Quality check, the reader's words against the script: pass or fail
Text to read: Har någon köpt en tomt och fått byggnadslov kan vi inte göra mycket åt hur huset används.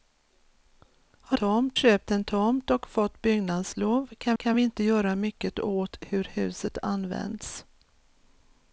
fail